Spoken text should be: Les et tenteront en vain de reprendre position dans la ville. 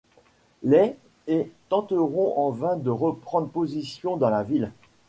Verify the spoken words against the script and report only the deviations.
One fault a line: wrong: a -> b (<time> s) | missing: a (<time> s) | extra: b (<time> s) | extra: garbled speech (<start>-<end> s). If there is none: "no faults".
no faults